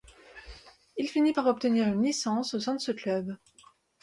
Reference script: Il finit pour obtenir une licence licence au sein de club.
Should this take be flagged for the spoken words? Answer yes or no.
yes